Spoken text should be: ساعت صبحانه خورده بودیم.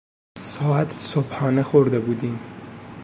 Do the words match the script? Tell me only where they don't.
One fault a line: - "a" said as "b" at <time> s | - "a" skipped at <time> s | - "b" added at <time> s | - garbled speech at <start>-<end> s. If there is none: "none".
none